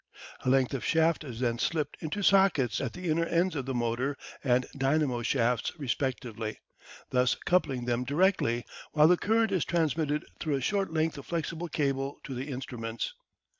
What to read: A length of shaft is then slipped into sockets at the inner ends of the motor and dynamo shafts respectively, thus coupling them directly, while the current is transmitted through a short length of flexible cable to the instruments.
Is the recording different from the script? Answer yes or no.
no